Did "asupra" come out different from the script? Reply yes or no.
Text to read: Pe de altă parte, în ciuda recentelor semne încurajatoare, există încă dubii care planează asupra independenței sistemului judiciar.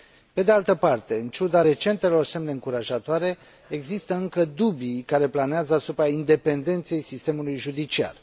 no